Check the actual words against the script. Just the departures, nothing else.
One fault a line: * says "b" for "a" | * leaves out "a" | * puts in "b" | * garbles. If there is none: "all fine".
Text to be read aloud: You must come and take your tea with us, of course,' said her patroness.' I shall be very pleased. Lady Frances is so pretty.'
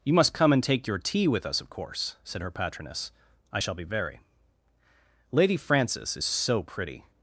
* leaves out "pleased"